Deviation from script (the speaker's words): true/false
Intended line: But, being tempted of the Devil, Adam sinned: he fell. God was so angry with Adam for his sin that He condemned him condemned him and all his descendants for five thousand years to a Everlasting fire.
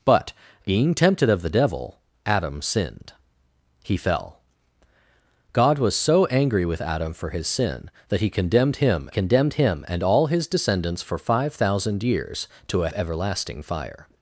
false